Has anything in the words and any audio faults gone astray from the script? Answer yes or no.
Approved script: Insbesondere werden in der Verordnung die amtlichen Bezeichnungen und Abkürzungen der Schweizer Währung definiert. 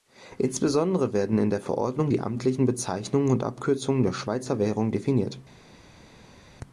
no